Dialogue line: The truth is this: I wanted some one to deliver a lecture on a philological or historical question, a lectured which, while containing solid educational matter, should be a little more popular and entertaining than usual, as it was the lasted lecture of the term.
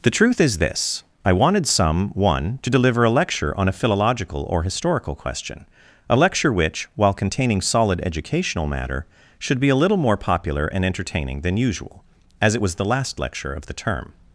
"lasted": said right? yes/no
no